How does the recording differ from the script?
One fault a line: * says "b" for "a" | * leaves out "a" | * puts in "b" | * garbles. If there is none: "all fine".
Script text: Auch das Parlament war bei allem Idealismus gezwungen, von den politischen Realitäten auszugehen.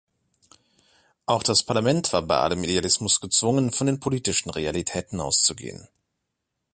all fine